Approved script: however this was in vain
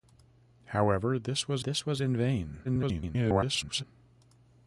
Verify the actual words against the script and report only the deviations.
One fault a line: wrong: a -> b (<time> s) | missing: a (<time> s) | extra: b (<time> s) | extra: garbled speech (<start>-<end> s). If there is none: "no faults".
extra: this was (1.6 s)
extra: garbled speech (2.6-3.8 s)